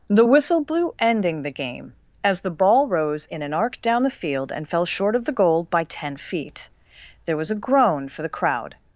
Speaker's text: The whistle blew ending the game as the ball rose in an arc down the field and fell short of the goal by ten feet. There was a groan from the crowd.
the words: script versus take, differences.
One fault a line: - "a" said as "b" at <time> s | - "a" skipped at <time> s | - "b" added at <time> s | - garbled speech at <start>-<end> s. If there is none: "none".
- "from" said as "for" at 8.1 s